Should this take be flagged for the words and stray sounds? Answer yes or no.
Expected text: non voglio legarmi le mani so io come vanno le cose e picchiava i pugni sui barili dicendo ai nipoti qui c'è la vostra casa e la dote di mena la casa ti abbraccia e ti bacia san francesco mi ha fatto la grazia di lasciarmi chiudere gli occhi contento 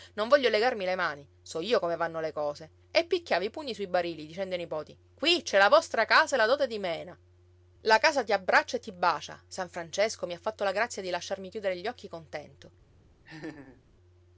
yes